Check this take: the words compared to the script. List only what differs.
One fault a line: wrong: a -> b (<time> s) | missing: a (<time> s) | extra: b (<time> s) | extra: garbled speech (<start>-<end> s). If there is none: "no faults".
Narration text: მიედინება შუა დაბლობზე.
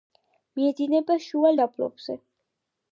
no faults